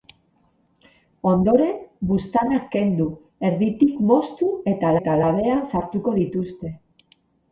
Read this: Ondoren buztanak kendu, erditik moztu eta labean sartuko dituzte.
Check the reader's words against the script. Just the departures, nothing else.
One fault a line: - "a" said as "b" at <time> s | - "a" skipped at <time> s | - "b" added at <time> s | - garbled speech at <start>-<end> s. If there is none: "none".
- "eta" added at 5.0 s